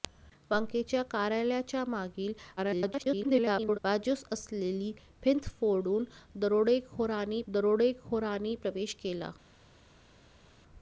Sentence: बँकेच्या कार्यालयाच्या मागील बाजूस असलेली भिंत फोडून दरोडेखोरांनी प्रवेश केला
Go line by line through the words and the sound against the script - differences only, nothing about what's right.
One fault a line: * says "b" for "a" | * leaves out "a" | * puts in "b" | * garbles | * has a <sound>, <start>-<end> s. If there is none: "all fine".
* garbles
* puts in "दरोडेखोरांनी"